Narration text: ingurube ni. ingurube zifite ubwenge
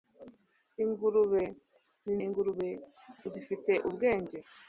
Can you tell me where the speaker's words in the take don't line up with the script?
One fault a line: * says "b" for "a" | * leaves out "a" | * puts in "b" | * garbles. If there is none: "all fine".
all fine